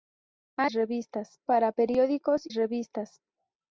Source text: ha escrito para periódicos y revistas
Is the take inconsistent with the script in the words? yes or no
yes